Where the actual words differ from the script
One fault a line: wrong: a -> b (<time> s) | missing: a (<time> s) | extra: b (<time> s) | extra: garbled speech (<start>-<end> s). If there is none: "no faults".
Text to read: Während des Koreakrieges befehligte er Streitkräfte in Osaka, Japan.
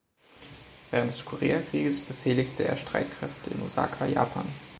no faults